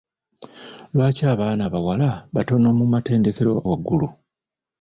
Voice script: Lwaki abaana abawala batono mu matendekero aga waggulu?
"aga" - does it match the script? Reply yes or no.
no